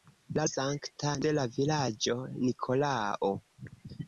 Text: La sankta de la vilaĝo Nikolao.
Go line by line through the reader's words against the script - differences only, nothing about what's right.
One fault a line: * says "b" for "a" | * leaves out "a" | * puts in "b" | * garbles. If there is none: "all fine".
all fine